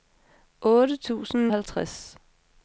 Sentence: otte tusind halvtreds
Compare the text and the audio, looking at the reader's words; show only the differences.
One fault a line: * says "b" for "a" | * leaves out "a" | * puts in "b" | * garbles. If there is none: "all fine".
all fine